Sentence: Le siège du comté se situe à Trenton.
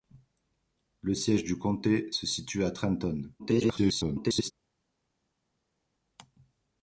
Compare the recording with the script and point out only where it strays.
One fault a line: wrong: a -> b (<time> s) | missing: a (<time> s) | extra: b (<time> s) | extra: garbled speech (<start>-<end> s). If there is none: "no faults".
extra: garbled speech (3.4-4.5 s)